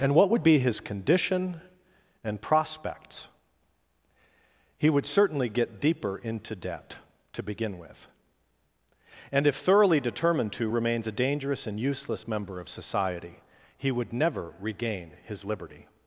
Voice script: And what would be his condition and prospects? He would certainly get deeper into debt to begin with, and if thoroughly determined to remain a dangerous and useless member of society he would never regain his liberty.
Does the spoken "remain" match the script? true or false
false